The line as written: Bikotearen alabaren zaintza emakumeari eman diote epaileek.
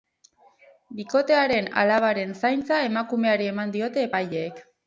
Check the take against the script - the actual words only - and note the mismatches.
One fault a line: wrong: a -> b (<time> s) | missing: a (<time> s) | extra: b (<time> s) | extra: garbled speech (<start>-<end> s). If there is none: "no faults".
no faults